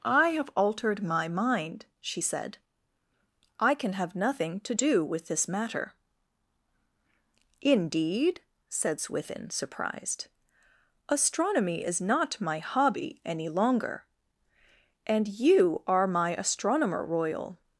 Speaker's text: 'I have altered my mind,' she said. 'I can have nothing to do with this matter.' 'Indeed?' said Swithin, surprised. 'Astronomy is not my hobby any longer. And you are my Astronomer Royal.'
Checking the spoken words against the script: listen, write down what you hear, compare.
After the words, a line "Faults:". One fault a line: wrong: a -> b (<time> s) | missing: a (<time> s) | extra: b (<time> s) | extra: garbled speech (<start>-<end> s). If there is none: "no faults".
'I have altered my mind,' she said. 'I can have nothing to do with this matter.' 'Indeed?' said Swithin, surprised. 'Astronomy is not my hobby any longer. And you are my Astronomer Royal.'
Faults:
no faults